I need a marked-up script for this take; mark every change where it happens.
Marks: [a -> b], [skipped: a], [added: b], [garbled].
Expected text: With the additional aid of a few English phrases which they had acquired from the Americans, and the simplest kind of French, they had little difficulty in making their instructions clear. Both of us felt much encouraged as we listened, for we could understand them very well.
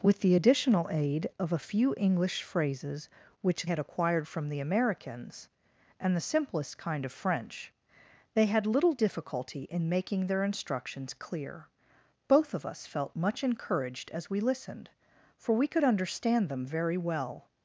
With the additional aid of a few English phrases which [skipped: they] had acquired from the Americans, and the simplest kind of French, they had little difficulty in making their instructions clear. Both of us felt much encouraged as we listened, for we could understand them very well.